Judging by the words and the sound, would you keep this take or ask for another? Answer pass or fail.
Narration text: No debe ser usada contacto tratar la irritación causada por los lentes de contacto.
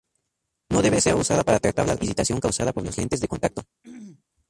fail